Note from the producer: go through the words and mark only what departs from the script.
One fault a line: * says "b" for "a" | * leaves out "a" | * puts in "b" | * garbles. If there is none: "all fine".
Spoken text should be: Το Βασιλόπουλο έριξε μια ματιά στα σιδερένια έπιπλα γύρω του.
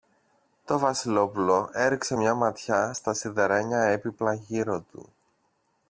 all fine